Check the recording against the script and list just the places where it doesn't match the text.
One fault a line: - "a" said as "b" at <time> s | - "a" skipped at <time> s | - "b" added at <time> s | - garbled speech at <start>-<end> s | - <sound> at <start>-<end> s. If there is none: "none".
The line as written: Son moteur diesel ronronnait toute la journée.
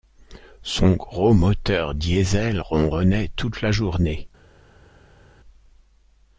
- "gros" added at 0.9 s